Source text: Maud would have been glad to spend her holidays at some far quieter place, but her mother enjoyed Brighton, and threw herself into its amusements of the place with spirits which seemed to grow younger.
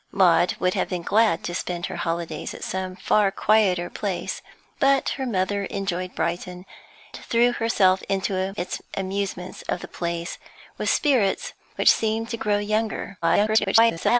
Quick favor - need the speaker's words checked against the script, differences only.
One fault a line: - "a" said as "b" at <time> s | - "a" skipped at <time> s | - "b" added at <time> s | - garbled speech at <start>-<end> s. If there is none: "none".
- "and" skipped at 6.6 s
- garbled speech at 13.2-14.2 s